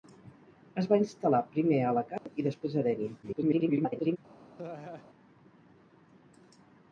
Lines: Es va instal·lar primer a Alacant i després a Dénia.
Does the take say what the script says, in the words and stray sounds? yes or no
no